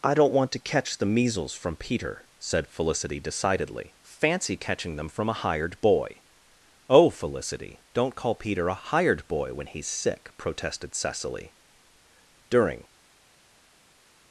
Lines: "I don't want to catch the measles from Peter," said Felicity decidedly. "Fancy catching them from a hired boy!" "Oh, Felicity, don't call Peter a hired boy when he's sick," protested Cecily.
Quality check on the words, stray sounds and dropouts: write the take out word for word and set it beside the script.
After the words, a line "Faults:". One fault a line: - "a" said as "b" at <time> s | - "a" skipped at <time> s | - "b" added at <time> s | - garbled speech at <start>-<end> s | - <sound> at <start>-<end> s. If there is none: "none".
"I don't want to catch the measles from Peter," said Felicity decidedly. "Fancy catching them from a hired boy!" "Oh, Felicity, don't call Peter a hired boy when he's sick," protested Cecily. During
Faults:
- "During" added at 12.5 s